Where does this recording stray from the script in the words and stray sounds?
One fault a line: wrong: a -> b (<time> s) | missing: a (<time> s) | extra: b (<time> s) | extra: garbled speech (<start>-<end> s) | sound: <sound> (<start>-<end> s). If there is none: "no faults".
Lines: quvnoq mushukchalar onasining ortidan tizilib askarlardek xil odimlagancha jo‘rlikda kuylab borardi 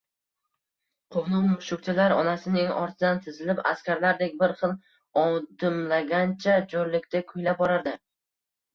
extra: bir (4.4 s)